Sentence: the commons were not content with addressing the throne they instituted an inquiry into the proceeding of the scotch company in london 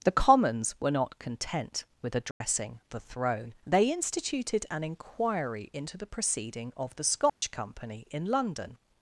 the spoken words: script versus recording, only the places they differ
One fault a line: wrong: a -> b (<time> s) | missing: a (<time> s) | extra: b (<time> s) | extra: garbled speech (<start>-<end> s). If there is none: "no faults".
no faults